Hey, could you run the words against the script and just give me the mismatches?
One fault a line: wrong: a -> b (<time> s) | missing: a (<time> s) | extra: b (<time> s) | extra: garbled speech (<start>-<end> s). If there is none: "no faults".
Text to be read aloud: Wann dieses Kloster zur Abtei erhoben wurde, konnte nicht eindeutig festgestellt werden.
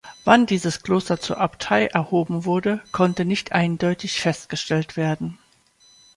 no faults